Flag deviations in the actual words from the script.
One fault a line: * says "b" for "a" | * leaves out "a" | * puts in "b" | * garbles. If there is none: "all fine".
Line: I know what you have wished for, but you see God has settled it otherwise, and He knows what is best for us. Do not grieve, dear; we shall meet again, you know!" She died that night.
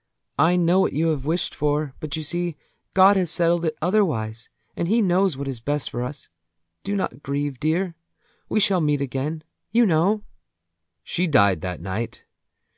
all fine